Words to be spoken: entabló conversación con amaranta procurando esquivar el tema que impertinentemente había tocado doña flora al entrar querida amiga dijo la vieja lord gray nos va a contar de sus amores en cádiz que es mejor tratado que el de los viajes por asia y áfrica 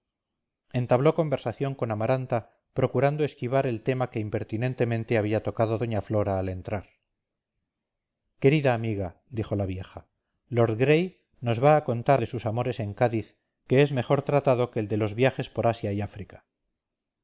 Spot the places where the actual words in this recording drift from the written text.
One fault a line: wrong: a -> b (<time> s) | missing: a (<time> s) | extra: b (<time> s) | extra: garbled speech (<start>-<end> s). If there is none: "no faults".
no faults